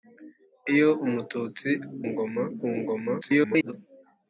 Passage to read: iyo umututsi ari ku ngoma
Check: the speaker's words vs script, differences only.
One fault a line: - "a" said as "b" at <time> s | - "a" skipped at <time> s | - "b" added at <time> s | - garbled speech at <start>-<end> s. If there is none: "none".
- "ari" said as "ngoma" at 2.1 s
- garbled speech at 3.2-3.7 s